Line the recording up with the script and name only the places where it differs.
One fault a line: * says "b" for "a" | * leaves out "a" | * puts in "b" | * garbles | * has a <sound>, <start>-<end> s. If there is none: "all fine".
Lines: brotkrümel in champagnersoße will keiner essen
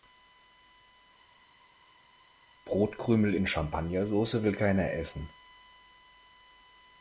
all fine